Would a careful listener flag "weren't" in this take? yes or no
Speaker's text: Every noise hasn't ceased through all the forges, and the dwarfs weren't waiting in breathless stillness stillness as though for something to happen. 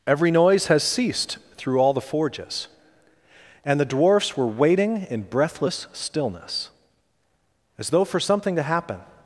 yes